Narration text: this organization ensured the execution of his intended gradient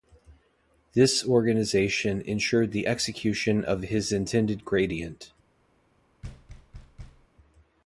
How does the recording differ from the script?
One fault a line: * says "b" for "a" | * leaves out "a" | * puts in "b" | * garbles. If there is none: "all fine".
all fine